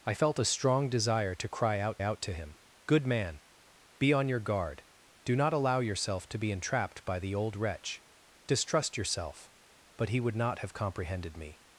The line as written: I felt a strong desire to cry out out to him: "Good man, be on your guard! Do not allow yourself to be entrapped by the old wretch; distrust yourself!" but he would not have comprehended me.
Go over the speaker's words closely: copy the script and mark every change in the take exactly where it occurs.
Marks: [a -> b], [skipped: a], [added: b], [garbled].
I felt a strong desire to cry out out to him: "Good man, be on your guard! Do not allow yourself to be entrapped by the old wretch; distrust yourself!" but he would not have comprehended me.